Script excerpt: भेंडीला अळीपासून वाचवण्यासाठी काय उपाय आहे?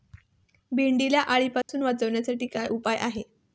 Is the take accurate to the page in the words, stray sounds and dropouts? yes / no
no